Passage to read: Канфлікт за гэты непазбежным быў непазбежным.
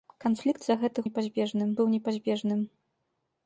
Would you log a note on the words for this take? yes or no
no